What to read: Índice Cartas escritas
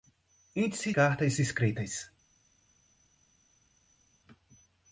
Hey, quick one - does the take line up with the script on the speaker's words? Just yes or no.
yes